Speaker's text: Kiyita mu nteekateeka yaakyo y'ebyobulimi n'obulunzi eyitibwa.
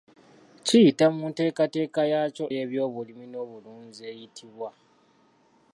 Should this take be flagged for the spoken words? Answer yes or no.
no